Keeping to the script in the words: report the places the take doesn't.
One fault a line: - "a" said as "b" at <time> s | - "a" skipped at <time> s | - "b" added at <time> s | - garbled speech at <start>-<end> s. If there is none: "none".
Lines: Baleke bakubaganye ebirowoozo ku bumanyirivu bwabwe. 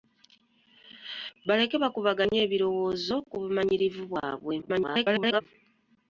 - garbled speech at 4.6-5.4 s